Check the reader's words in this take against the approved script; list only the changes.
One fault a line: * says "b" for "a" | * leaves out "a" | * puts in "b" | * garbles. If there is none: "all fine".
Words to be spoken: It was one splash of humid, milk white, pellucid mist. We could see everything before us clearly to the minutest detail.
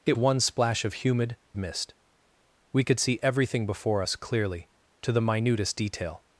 * leaves out "was"
* leaves out "milk white pellucid"